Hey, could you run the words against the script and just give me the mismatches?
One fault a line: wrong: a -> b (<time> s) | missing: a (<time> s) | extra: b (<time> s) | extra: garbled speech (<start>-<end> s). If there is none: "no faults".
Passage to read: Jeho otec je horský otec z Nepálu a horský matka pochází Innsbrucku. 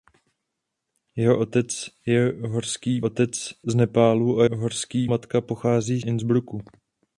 no faults